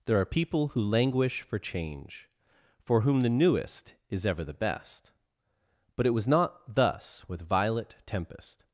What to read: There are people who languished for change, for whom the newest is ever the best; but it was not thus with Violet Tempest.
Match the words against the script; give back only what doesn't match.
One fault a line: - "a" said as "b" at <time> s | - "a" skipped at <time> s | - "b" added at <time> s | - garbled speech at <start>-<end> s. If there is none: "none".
- "languished" said as "languish" at 0.8 s